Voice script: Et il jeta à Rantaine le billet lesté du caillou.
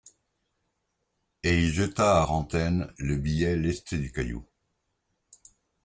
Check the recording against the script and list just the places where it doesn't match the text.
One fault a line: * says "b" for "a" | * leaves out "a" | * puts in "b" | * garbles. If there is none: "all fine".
all fine